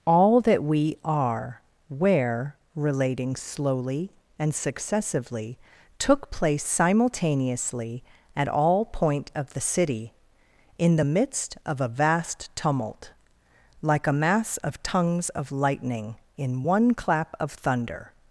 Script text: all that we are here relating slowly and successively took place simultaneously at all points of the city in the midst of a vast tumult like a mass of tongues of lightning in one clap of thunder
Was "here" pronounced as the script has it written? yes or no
no